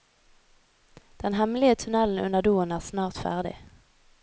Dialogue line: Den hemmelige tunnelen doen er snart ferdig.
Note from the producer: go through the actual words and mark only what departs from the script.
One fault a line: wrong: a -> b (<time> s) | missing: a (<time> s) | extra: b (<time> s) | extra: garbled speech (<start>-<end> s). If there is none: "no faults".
extra: under (2.2 s)